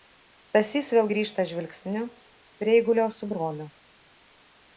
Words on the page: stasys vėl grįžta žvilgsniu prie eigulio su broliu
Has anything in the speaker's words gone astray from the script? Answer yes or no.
no